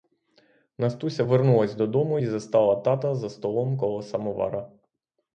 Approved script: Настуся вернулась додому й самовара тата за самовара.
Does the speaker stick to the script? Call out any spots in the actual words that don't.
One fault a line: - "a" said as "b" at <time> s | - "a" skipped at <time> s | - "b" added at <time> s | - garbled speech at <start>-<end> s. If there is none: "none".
- "самовара" said as "застала" at 2.2 s
- "столом коло" added at 3.3 s